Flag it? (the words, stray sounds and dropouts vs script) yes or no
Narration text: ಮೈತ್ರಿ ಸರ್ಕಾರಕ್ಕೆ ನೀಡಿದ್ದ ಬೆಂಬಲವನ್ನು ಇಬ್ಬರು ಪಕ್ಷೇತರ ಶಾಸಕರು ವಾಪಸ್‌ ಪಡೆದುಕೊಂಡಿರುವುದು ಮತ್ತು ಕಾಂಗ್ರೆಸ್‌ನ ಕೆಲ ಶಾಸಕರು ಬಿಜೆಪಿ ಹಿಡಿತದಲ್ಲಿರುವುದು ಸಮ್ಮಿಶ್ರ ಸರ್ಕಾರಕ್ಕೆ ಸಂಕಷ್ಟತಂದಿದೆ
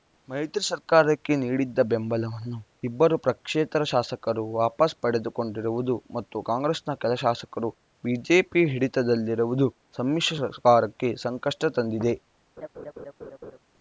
yes